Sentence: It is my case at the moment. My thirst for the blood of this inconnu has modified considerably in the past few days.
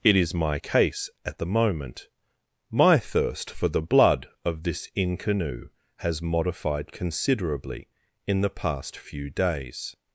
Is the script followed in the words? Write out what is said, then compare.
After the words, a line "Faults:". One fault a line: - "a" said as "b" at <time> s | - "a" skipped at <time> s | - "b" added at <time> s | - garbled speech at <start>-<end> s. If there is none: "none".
It is my case at the moment. My thirst for the blood of this inconnu has modified considerably in the past few days.
Faults:
none